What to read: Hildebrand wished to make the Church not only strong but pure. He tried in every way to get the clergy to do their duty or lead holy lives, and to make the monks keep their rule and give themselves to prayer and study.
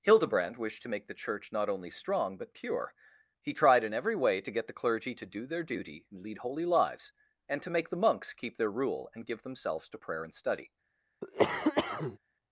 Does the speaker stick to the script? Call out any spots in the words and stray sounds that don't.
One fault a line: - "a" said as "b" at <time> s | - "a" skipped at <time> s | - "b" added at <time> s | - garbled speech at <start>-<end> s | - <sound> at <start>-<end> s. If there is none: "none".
- "or" said as "and" at 6.1 s
- cough at 11.2-12.2 s